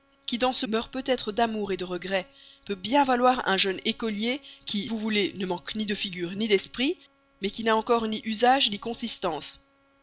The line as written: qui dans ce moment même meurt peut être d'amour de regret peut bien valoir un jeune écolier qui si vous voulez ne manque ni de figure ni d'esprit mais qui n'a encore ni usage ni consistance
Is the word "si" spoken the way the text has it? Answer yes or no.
no